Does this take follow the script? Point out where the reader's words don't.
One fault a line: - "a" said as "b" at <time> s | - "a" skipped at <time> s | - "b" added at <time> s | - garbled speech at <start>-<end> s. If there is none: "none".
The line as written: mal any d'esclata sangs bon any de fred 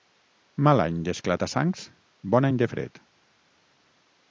none